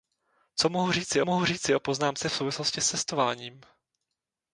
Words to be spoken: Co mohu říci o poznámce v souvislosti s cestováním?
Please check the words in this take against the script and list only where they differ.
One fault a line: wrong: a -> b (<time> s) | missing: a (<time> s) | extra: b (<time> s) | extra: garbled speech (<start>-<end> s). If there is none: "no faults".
extra: mohu říci (1.2 s)